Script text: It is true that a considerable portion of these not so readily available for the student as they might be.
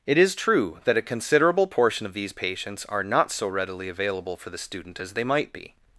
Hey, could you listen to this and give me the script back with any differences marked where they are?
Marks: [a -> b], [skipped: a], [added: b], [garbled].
It is true that a considerable portion of these [added: patients are] not so readily available for the student as they might be.